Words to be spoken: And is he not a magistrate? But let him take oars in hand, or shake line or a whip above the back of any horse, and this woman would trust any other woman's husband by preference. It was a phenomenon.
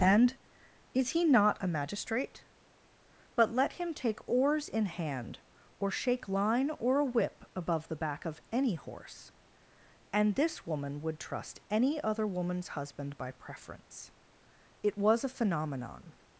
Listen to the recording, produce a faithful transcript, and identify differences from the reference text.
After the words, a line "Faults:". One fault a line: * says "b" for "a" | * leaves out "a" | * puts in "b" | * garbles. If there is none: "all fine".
And is he not a magistrate? But let him take oars in hand, or shake line or a whip above the back of any horse, and this woman would trust any other woman's husband by preference. It was a phenomenon.
Faults:
all fine